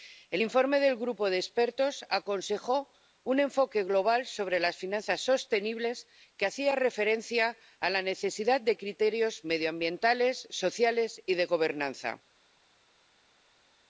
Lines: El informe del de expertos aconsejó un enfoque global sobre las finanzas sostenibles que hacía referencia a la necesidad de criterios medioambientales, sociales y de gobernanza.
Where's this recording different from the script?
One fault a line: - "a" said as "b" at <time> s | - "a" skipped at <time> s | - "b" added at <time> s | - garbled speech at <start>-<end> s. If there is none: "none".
- "grupo" added at 1.0 s